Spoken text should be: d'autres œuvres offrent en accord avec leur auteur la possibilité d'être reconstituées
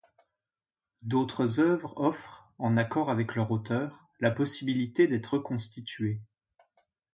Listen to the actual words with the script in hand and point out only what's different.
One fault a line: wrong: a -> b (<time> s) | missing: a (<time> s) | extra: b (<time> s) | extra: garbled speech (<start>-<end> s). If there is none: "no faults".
no faults